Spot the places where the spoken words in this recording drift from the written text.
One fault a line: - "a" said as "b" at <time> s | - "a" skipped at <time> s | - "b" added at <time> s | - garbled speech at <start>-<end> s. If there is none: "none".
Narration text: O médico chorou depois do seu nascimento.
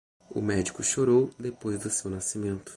none